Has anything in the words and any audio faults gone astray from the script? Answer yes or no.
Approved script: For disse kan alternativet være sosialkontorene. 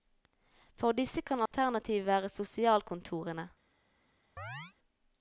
yes